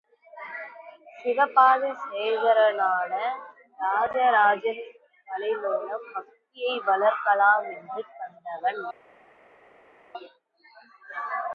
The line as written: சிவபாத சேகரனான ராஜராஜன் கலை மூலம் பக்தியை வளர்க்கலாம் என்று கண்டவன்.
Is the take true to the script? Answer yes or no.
yes